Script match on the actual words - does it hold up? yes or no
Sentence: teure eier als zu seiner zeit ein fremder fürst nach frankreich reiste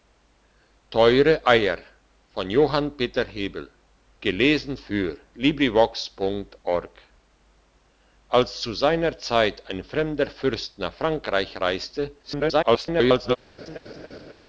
no